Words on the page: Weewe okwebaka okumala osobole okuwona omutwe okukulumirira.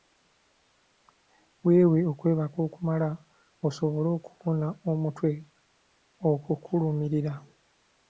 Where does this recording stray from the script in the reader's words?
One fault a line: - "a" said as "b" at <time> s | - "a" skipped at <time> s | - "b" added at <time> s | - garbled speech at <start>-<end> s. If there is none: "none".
none